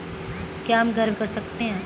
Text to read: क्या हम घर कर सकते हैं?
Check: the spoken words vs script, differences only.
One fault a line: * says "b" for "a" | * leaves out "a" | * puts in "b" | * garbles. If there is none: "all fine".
all fine